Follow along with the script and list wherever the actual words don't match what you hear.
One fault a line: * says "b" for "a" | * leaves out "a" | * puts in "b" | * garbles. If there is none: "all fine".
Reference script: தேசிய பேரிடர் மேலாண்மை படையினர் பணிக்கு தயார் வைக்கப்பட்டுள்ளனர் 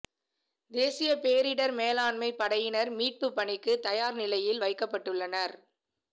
* puts in "மீட்பு"
* puts in "நிலையில்"